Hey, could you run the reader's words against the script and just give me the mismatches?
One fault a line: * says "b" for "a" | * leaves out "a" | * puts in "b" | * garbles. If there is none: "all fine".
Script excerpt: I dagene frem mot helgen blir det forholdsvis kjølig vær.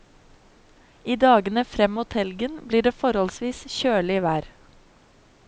all fine